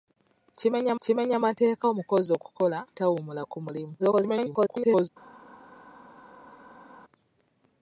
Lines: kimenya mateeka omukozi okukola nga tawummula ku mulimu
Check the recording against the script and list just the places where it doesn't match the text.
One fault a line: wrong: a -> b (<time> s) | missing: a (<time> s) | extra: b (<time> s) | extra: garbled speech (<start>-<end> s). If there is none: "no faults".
extra: kimenya (1.0 s)
missing: nga (2.8 s)
extra: garbled speech (4.0-5.1 s)